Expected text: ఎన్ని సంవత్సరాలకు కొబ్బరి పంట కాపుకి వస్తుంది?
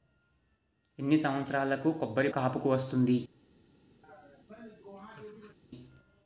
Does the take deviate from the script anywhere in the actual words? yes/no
yes